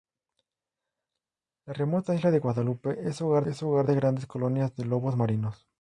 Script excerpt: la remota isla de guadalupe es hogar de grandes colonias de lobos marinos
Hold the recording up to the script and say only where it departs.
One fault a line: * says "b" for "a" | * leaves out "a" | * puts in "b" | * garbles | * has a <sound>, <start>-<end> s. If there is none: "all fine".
* puts in "es hogar"